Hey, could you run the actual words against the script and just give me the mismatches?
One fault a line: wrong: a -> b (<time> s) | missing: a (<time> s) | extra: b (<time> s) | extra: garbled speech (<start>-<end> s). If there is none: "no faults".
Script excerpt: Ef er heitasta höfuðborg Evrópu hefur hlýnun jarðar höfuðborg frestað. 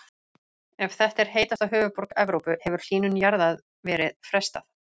extra: þetta (1.0 s)
wrong: höfuðborg -> verið (3.9 s)